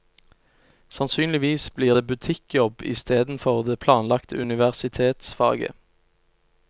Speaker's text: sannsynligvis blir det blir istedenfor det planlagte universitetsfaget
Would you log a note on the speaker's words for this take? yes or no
yes